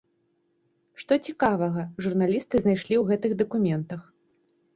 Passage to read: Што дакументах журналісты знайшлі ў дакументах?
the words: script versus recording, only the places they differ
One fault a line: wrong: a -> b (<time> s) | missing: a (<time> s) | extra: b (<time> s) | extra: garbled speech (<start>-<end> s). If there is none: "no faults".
wrong: дакументах -> цікавага (1.3 s)
extra: гэтых (3.1 s)